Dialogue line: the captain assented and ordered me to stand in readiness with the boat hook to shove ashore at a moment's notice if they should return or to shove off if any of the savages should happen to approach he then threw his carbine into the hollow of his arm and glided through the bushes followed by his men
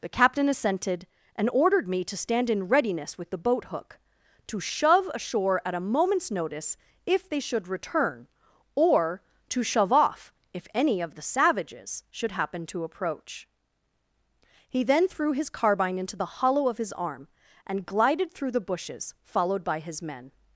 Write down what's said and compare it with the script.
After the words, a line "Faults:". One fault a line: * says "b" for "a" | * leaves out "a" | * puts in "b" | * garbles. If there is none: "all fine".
the captain assented and ordered me to stand in readiness with the boat hook to shove ashore at a moment's notice if they should return or to shove off if any of the savages should happen to approach he then threw his carbine into the hollow of his arm and glided through the bushes followed by his men
Faults:
all fine